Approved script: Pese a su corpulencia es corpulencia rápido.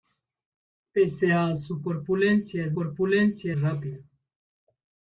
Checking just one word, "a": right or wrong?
right